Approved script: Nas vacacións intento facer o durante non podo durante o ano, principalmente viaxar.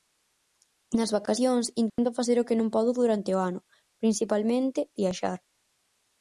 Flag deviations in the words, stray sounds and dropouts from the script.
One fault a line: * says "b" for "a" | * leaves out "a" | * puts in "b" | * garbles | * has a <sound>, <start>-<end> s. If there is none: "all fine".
* has a dropout, 1.9-2.0 s
* says "que" for "durante"